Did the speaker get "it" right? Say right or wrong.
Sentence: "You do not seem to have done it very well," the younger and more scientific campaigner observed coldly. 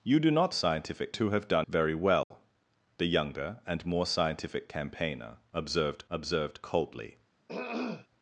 wrong